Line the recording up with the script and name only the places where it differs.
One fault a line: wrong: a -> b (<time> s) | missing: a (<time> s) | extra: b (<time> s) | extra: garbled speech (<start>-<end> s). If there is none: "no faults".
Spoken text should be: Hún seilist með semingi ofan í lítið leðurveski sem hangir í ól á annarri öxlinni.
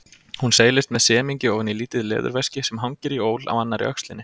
no faults